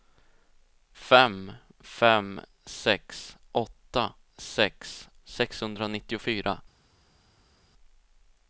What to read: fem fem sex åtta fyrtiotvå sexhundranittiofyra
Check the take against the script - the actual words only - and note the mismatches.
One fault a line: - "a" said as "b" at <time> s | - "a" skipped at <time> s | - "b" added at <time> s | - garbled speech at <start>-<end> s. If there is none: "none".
- "fyrtiotvå" said as "sex" at 4.4 s